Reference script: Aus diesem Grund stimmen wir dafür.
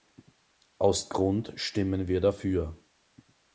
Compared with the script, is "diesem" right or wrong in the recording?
wrong